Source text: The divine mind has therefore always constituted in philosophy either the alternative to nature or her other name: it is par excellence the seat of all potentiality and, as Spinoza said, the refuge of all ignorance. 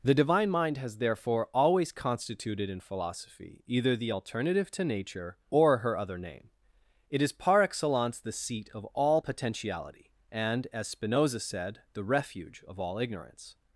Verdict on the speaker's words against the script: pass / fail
pass